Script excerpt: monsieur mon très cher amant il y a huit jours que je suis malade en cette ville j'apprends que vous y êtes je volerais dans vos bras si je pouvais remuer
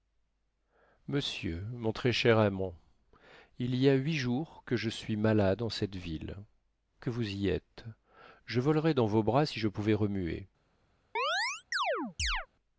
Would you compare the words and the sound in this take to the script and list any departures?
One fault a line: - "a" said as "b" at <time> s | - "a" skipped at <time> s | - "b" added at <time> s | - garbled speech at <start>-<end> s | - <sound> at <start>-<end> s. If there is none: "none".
- "j'apprends" skipped at 6.4 s
- chirp at 11.2-12.5 s